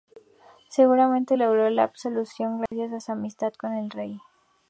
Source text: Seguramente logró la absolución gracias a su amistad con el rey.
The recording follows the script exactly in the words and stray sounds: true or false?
false